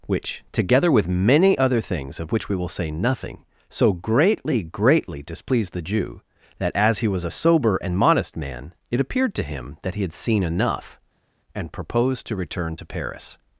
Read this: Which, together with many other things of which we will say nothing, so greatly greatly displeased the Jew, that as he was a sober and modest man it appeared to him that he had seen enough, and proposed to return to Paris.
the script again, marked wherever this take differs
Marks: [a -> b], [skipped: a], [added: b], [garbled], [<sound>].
Which, together with many other things of which we will say nothing, so greatly greatly displeased the Jew, that as he was a sober and modest man it appeared to him that he had seen enough, and proposed to return to Paris.